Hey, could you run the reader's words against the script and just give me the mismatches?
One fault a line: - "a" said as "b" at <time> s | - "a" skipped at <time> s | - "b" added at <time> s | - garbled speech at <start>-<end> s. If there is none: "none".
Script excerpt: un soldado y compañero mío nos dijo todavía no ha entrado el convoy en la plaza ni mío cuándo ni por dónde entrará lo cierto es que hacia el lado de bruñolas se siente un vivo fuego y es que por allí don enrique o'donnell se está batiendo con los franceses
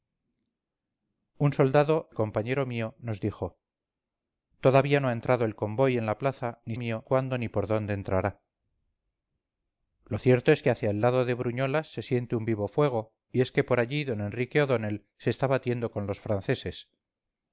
none